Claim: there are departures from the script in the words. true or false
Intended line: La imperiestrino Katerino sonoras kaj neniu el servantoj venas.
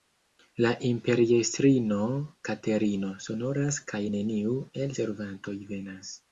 false